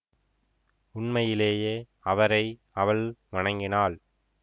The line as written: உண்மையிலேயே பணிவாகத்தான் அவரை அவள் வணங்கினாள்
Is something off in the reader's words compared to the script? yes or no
yes